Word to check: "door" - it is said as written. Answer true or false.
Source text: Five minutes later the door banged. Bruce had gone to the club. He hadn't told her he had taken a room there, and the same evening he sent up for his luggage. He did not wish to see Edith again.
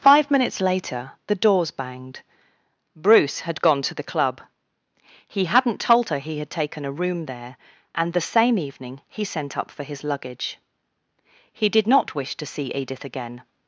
false